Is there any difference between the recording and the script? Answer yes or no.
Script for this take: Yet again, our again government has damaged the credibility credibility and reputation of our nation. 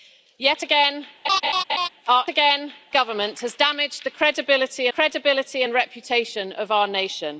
no